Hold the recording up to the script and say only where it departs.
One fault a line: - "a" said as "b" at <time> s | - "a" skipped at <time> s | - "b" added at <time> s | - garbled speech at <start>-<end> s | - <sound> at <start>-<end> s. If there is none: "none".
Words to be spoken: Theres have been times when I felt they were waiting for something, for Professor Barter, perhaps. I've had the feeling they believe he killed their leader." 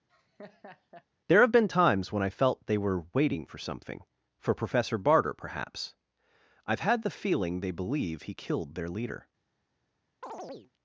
- laugh at 0.1-1.1 s
- "Theres" said as "There" at 1.3 s
- chirp at 10.2-10.7 s